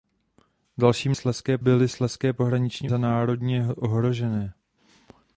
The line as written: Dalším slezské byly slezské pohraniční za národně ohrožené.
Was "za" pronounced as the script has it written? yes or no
yes